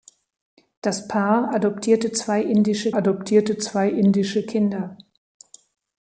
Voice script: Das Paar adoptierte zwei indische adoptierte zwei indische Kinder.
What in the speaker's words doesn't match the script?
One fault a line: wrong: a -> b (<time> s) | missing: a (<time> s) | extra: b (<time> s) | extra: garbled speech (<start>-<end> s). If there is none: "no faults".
no faults